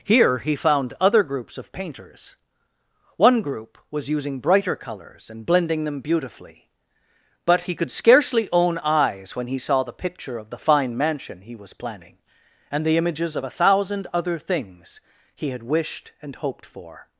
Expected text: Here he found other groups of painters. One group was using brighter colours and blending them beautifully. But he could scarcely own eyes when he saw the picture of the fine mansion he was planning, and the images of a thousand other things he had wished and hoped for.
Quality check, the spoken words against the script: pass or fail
pass